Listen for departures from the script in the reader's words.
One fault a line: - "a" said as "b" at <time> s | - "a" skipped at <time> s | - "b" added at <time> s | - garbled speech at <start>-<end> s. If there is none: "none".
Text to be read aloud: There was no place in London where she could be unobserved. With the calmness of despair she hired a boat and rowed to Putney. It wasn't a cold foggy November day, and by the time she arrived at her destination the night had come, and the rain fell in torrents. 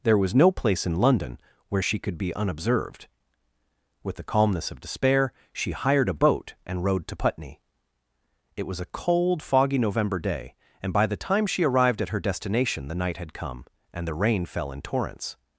- "wasn't" said as "was" at 8.7 s